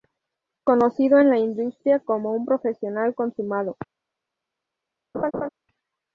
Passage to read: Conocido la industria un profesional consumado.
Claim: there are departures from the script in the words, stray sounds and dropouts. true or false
true